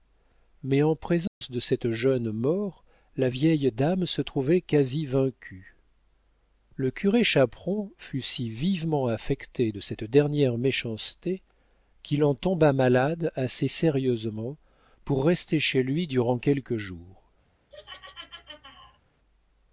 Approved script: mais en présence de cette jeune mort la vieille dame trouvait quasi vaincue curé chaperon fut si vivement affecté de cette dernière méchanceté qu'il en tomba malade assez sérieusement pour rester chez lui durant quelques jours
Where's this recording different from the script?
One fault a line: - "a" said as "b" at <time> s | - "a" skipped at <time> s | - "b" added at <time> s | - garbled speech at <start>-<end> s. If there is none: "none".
- "se" added at 4.1 s
- "le" added at 6.8 s